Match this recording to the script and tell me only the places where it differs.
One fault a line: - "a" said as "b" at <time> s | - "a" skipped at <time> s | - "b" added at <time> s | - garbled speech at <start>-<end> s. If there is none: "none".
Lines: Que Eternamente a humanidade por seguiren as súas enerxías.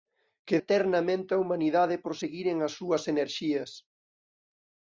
none